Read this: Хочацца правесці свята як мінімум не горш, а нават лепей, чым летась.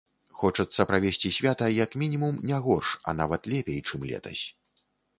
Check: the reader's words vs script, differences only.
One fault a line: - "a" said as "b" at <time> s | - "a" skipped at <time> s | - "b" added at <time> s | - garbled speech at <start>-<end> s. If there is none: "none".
none